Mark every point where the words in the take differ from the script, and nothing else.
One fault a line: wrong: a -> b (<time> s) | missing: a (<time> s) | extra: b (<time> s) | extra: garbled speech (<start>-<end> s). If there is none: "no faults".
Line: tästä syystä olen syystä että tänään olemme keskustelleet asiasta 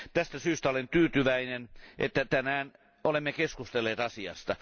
wrong: syystä -> tyytyväinen (0.9 s)